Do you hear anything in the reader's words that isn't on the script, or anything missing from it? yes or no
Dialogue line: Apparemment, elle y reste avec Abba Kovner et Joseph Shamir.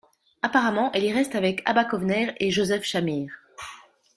no